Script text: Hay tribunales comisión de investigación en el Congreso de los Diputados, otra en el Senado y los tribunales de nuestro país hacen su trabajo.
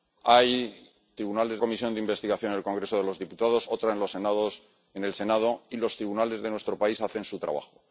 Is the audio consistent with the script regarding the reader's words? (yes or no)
yes